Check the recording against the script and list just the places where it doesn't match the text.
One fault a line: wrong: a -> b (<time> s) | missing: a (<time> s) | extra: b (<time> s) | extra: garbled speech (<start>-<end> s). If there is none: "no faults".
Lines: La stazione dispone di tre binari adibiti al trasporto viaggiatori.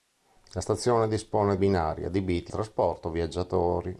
missing: di tre (1.6 s)
missing: al (2.5 s)